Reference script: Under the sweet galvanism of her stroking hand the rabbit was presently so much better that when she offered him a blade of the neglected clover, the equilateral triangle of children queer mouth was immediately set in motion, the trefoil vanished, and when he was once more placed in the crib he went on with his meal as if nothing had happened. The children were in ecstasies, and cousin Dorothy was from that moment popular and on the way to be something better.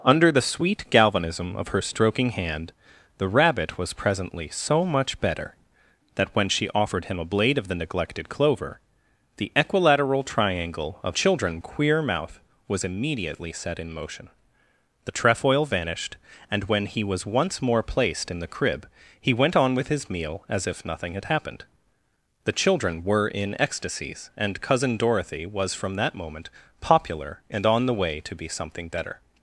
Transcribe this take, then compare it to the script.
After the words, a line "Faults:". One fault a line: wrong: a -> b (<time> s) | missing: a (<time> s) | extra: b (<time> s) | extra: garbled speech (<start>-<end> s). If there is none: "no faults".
Under the sweet galvanism of her stroking hand the rabbit was presently so much better that when she offered him a blade of the neglected clover, the equilateral triangle of children queer mouth was immediately set in motion, the trefoil vanished, and when he was once more placed in the crib he went on with his meal as if nothing had happened. The children were in ecstasies, and cousin Dorothy was from that moment popular and on the way to be something better.
Faults:
no faults